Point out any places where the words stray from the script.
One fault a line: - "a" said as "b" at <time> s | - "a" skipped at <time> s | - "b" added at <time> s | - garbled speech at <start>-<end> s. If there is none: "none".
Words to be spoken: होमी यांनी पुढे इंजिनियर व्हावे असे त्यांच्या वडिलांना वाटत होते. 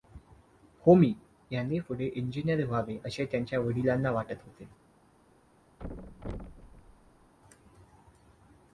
none